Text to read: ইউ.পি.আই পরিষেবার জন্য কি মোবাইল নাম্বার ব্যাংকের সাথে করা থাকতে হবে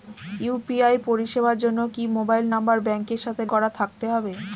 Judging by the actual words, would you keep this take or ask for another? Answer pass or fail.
pass